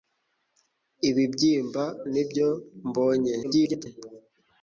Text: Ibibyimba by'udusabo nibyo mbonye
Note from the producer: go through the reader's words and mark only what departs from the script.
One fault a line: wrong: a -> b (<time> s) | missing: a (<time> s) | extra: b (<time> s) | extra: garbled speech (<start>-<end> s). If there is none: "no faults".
missing: by'udusabo (1.8 s)
extra: garbled speech (3.4-3.9 s)